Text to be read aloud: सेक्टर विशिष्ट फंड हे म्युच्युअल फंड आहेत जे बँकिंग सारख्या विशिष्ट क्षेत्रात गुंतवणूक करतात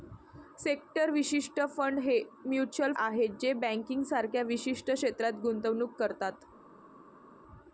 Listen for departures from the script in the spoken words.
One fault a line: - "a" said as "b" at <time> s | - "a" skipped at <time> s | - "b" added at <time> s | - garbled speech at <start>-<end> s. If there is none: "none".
- "फंड" skipped at 2.9 s